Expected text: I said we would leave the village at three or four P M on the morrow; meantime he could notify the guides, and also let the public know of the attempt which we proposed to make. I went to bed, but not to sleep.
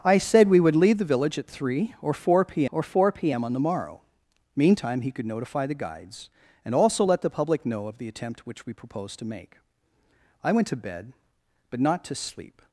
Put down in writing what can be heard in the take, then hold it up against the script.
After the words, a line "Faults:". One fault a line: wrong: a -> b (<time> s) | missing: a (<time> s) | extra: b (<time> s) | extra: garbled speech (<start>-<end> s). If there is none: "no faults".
I said we would leave the village at three or four P or four P M on the morrow; meantime he could notify the guides, and also let the public know of the attempt which we proposed to make. I went to bed, but not to sleep.
Faults:
extra: or four P (2.7 s)